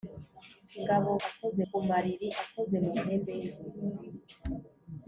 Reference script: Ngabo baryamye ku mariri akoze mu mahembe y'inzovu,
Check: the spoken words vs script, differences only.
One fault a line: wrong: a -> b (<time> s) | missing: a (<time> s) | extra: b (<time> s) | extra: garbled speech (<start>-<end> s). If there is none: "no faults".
wrong: baryamye -> akoze (1.3 s)